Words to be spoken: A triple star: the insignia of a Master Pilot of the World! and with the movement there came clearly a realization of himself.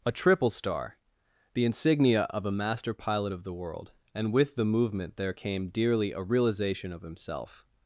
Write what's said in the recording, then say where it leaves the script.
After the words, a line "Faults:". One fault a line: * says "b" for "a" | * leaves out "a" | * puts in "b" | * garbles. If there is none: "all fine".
A triple star: the insignia of a Master Pilot of the World! and with the movement there came dearly a realization of himself.
Faults:
* says "dearly" for "clearly"